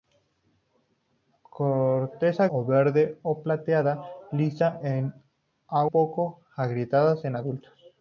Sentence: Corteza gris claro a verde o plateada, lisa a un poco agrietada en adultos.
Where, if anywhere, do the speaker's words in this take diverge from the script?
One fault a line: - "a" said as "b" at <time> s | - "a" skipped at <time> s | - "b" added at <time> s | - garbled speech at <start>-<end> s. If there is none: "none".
- "gris claro" skipped at 2.5 s
- "un" skipped at 5.8 s